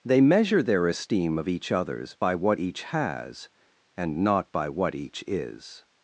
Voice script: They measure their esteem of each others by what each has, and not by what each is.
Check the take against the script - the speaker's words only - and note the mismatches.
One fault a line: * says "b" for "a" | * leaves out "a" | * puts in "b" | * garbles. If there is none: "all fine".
all fine